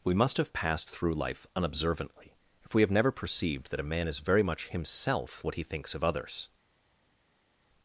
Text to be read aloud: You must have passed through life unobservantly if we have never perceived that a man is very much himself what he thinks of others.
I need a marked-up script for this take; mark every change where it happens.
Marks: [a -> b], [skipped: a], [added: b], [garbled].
[You -> We] must have passed through life unobservantly if we have never perceived that a man is very much himself what he thinks of others.